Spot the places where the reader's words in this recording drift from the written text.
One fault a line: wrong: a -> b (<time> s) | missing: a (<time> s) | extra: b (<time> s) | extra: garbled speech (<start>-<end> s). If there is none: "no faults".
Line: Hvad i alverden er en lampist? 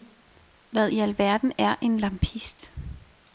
no faults